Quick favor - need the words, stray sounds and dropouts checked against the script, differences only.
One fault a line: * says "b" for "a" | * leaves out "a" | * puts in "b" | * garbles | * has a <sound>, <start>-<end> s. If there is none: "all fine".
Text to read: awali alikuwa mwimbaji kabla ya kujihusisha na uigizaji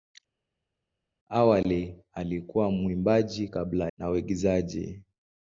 * leaves out "ya kujihusisha"